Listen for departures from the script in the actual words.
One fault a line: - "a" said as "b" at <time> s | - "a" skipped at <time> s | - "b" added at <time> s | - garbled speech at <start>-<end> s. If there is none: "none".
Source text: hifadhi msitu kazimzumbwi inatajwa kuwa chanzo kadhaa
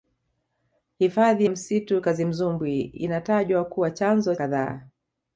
none